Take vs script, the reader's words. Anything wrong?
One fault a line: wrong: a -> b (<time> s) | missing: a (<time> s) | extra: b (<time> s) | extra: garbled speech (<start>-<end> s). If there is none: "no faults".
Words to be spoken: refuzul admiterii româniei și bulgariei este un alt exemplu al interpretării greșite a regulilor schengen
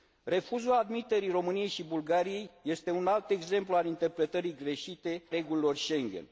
missing: a (5.2 s)